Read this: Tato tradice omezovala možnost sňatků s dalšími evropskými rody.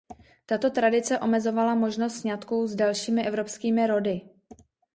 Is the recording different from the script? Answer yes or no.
no